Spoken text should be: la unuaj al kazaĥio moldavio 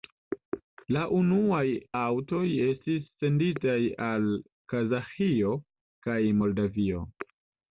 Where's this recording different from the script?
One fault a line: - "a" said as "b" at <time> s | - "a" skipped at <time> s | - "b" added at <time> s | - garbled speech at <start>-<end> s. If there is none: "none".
- "aŭtoj estis senditaj" added at 2.0 s
- "kaj" added at 6.1 s